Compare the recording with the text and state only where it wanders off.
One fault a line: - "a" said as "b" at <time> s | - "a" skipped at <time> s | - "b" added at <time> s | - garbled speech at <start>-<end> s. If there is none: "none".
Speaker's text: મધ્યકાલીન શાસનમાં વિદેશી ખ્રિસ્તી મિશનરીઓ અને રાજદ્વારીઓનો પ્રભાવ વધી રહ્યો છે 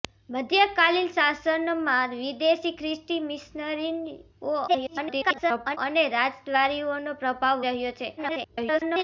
- garbled speech at 4.7-5.8 s
- "વધી" skipped at 7.7 s
- garbled speech at 8.2-9.0 s